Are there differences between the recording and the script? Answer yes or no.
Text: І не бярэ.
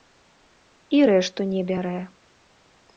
yes